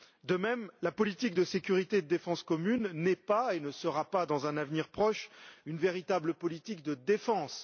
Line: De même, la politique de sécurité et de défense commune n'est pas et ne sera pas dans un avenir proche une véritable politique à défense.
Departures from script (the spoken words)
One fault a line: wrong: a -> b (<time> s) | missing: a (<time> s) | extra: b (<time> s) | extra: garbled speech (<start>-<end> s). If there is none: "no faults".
wrong: à -> de (6.8 s)